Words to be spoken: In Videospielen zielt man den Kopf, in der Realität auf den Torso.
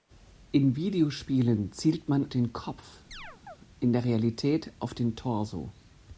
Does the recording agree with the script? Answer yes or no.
yes